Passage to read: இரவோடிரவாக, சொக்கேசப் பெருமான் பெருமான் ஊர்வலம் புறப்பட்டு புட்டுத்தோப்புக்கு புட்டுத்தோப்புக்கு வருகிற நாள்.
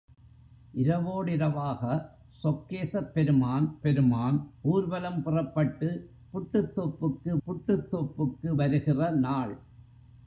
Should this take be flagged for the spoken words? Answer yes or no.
no